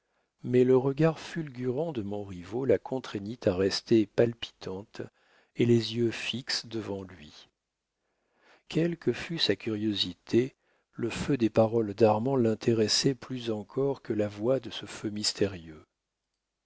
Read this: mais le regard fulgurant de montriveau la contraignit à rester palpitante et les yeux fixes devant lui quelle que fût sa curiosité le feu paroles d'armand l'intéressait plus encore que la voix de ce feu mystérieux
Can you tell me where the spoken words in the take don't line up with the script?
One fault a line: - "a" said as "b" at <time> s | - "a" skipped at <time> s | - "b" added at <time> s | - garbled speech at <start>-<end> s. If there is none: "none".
- "des" added at 11.4 s